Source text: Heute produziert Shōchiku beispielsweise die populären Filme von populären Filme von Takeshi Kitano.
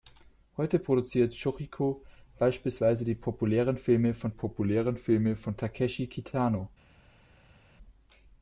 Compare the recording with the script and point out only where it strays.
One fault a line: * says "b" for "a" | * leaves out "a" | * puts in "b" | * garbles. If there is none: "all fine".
all fine